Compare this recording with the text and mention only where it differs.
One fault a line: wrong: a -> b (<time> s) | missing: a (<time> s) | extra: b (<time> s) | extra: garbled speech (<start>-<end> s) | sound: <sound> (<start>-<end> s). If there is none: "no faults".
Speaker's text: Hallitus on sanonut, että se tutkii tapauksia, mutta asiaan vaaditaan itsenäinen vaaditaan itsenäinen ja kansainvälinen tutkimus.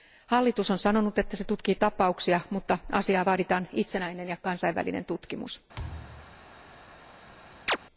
missing: vaaditaan itsenäinen (4.3 s)
sound: thud (5.7-6.5 s)
sound: chirp (7.7-7.8 s)